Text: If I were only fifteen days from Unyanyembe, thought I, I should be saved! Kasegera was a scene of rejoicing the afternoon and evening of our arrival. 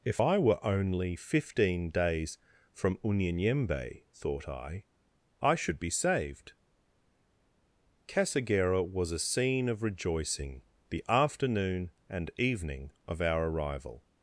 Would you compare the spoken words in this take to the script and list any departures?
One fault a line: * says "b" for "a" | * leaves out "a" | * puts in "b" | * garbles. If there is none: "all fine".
all fine